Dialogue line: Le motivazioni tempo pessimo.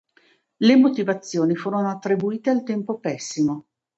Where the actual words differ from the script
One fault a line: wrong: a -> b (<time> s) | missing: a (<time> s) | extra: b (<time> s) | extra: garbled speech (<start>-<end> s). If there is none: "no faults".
extra: furono attribuite al (1.6 s)